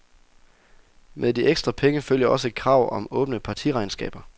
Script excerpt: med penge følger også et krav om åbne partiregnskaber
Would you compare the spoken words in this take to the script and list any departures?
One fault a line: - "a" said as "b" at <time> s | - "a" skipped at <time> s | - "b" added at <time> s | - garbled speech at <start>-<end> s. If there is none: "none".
- "de ekstra" added at 1.3 s